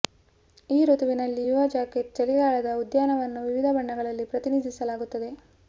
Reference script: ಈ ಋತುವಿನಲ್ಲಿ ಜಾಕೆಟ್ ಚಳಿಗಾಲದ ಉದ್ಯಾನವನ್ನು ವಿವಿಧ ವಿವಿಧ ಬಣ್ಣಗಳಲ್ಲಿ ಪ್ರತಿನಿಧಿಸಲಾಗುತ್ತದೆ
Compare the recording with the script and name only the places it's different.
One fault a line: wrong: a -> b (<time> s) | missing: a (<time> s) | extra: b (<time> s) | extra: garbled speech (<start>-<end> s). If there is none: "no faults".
extra: ಯುವ (1.4 s)
missing: ವಿವಿಧ (3.7 s)